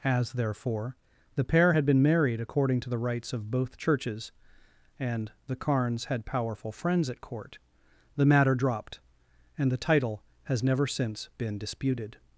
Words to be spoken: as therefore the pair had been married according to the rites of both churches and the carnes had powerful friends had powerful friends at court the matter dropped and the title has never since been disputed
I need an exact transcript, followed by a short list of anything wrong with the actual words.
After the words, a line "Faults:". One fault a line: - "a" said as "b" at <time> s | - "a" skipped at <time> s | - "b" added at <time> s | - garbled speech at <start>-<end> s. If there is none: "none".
as therefore the pair had been married according to the rites of both churches and the carnes had powerful friends at court the matter dropped and the title has never since been disputed
Faults:
- "had powerful friends" skipped at 7.1 s